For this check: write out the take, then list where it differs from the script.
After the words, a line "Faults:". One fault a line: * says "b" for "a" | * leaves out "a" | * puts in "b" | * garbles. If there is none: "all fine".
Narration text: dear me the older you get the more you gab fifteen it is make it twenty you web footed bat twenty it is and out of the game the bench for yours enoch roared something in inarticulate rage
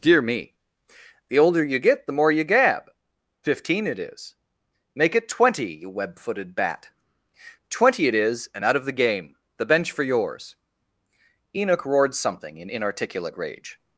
dear me the older you get the more you gab fifteen it is make it twenty you web footed bat twenty it is and out of the game the bench for yours enoch roared something in inarticulate rage
Faults:
all fine